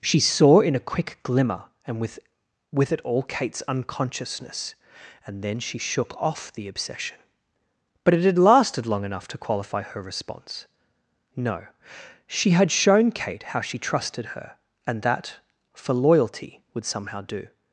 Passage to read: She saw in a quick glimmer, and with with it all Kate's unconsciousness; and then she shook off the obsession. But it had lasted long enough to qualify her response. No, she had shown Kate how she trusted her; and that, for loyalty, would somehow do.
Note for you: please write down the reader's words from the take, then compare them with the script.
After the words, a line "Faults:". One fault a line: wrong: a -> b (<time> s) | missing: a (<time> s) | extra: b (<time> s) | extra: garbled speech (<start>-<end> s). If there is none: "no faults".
She saw in a quick glimmer, and with with it all Kate's unconsciousness; and then she shook off the obsession. But it had lasted long enough to qualify her response. No, she had shown Kate how she trusted her; and that, for loyalty, would somehow do.
Faults:
no faults